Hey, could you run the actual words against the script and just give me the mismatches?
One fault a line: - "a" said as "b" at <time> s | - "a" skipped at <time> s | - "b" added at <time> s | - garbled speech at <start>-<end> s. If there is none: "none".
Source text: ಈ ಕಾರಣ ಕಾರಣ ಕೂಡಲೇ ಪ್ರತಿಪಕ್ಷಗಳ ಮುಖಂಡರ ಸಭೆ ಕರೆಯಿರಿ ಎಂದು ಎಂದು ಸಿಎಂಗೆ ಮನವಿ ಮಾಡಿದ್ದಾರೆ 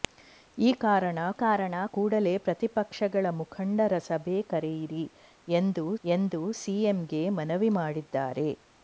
none